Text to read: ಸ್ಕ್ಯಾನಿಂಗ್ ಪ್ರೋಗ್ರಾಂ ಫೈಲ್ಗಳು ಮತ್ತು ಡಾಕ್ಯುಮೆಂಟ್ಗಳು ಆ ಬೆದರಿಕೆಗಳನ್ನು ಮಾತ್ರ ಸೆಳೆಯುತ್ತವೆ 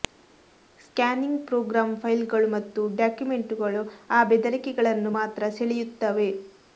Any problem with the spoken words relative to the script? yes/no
no